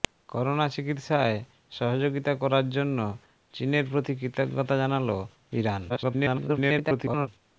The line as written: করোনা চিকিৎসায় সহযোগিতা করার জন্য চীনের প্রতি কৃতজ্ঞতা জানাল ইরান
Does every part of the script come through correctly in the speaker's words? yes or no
no